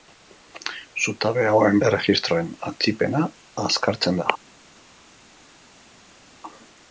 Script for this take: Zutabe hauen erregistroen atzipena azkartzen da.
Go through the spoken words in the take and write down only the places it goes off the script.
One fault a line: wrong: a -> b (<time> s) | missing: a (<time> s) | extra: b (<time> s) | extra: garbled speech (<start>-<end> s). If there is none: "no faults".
no faults